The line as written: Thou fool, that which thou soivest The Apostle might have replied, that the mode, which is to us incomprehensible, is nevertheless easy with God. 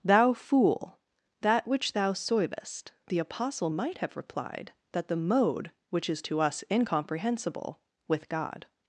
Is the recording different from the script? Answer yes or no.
yes